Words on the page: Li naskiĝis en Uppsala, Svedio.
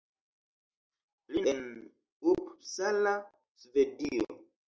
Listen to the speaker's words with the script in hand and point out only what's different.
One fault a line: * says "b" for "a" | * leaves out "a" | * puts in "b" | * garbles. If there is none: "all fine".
* leaves out "naskiĝis"